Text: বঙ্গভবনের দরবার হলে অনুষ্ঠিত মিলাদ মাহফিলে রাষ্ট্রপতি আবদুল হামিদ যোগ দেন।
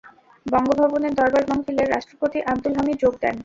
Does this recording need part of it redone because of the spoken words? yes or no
yes